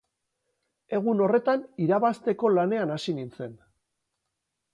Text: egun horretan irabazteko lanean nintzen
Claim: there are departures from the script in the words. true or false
true